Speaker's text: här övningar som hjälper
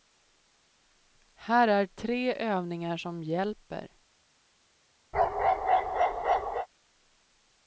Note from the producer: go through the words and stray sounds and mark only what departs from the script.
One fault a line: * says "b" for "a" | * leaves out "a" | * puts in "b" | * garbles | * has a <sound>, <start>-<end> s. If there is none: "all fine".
* puts in "är tre"
* has a bark, 5.1-6.7 s